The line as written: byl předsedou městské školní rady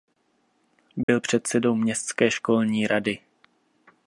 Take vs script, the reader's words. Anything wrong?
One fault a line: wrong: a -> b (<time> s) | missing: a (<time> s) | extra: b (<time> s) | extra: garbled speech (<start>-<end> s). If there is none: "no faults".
no faults